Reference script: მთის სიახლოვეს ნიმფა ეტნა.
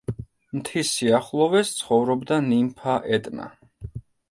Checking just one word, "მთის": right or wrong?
right